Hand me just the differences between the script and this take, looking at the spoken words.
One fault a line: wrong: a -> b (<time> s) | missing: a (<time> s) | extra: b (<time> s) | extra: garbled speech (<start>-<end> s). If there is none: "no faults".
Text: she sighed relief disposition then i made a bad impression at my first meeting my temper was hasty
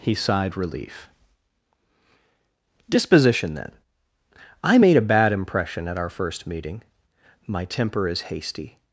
wrong: she -> he (0.0 s)
wrong: my -> our (6.0 s)
wrong: was -> is (8.1 s)